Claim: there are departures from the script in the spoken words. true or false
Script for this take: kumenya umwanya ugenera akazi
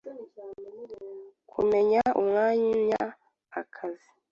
true